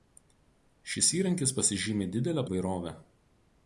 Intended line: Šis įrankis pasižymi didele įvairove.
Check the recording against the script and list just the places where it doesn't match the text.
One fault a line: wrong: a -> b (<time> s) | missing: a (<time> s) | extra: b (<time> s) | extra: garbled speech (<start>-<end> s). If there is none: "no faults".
no faults